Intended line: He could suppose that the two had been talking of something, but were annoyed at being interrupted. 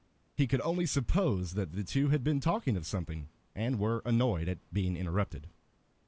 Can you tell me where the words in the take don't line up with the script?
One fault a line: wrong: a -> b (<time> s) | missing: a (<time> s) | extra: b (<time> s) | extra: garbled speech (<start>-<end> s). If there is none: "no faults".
extra: only (0.6 s)
wrong: but -> and (3.5 s)